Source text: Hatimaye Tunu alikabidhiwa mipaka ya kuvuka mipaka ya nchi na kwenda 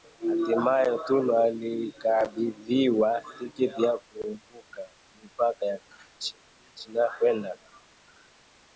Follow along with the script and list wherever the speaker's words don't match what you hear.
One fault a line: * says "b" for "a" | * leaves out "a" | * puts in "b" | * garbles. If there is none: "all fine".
* says "tiketi" for "mipaka"